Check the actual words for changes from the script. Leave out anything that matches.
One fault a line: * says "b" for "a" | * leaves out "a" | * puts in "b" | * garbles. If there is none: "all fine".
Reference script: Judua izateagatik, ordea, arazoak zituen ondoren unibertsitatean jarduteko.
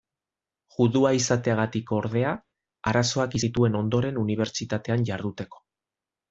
all fine